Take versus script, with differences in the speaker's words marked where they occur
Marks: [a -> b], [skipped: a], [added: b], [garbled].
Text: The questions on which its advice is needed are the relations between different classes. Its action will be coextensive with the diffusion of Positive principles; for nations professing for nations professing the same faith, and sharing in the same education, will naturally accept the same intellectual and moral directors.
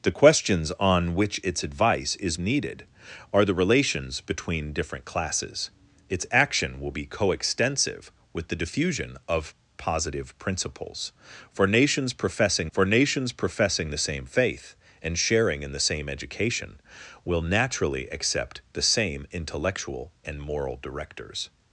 The questions on which its advice is needed are the relations between different classes. Its action will be coextensive with the diffusion of Positive principles; for nations professing for nations professing the same faith, and sharing in the same education, will naturally accept the same intellectual and moral directors.